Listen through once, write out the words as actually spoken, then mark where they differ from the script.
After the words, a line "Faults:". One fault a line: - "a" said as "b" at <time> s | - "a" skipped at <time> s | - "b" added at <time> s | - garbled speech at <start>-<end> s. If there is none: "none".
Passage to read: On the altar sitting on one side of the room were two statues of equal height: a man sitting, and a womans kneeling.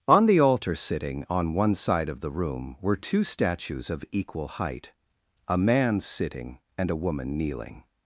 On the altar sitting on one side of the room were two statues of equal height: a man sitting, and a woman kneeling.
Faults:
- "womans" said as "woman" at 7.0 s